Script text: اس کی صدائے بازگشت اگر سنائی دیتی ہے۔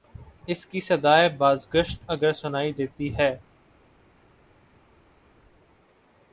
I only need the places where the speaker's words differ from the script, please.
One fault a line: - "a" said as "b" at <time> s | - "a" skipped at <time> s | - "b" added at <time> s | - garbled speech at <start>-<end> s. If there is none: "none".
none